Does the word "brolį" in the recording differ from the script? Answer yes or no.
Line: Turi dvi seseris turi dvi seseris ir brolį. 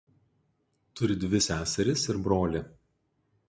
no